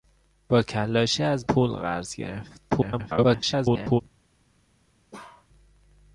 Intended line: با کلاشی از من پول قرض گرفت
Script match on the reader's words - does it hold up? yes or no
no